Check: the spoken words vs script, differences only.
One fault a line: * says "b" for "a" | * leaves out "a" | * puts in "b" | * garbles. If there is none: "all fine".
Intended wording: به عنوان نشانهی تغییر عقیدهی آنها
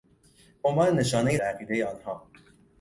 * leaves out "تغییر"